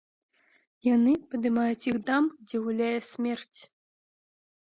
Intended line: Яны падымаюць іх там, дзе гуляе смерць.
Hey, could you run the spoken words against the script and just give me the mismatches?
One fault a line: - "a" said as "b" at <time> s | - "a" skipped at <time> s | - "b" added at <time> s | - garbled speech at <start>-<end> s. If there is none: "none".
none